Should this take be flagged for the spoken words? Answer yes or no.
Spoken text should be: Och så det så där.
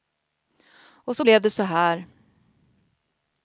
yes